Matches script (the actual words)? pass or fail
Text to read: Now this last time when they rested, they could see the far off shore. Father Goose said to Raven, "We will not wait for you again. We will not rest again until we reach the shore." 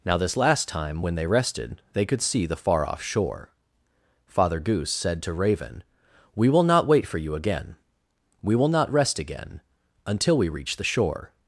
pass